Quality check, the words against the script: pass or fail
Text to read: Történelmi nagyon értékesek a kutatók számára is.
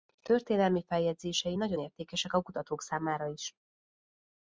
fail